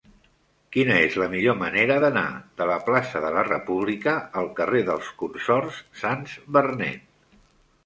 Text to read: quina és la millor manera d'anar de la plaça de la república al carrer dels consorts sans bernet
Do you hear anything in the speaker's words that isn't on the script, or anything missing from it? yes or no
no